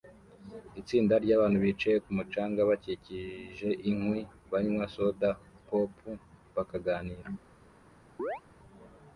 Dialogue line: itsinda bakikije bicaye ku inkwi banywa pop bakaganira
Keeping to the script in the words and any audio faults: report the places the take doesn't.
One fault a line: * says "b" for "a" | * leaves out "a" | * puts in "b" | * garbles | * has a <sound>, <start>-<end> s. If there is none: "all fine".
* says "ryabantu" for "bakikije"
* puts in "mucanga bakikije"
* puts in "soda"
* has a chirp, 8.2-8.4 s